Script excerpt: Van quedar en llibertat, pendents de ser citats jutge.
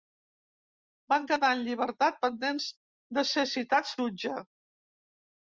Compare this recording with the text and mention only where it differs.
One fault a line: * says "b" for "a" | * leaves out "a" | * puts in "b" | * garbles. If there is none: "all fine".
all fine